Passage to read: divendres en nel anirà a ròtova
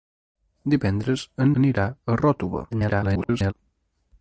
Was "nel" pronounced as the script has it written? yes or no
no